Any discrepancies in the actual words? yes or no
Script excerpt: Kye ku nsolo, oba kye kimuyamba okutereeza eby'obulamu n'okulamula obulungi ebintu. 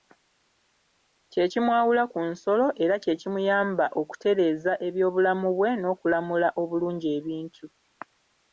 yes